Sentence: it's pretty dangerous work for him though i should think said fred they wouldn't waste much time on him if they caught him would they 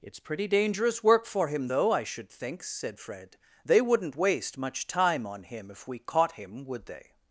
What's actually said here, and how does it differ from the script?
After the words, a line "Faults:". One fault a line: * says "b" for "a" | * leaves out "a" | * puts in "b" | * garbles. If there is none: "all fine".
it's pretty dangerous work for him though i should think said fred they wouldn't waste much time on him if we caught him would they
Faults:
* says "we" for "they"